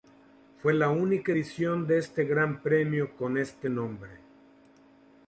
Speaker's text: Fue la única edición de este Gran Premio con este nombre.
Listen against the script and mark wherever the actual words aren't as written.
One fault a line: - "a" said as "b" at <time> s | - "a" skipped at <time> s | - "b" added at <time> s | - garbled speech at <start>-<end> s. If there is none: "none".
none